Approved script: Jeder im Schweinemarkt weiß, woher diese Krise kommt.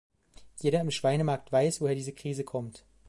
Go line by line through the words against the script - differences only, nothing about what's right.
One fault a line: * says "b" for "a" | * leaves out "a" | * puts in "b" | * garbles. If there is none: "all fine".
all fine